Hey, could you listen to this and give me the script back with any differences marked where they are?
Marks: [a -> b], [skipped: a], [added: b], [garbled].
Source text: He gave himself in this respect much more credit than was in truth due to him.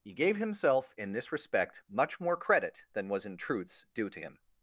He gave himself in this respect much more credit than was in [truth -> truths] due to him.